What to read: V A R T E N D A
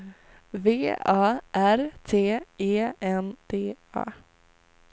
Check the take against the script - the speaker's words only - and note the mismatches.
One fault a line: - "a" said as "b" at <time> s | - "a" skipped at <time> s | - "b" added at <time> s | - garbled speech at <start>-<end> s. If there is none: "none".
none